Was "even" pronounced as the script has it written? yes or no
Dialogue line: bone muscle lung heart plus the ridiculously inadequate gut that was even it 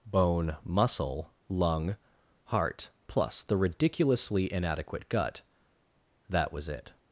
no